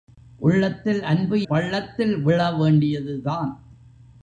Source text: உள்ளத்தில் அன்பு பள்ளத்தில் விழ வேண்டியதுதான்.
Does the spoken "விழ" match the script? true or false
true